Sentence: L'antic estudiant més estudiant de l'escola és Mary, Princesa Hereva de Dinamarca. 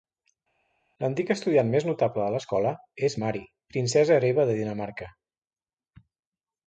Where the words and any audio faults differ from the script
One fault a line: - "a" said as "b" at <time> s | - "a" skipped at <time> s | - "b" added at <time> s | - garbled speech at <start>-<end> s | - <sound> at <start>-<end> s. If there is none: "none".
- "estudiant" said as "notable" at 1.9 s